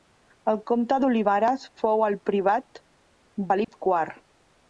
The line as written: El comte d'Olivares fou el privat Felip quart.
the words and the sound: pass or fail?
fail